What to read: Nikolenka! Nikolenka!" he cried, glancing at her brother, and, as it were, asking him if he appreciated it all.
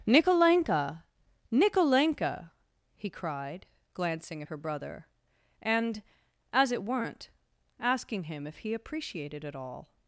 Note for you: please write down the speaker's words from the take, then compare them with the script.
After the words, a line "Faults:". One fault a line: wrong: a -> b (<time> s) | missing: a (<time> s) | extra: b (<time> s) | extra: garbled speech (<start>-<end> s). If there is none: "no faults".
Nikolenka! Nikolenka!" he cried, glancing at her brother, and, as it weren't, asking him if he appreciated it all.
Faults:
wrong: were -> weren't (6.8 s)